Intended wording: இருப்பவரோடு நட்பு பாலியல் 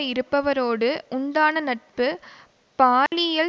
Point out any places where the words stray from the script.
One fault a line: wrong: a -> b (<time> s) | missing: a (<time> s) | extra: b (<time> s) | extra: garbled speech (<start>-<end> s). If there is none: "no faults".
extra: உண்டான (1.1 s)